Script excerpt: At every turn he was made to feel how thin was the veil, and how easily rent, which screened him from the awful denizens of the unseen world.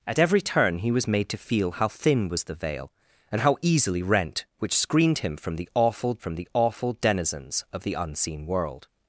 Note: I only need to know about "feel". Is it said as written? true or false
true